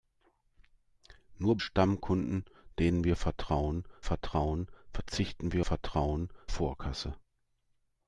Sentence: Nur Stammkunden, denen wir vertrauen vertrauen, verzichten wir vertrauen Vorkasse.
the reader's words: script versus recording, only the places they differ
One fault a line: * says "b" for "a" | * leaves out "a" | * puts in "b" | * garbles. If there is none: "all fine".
all fine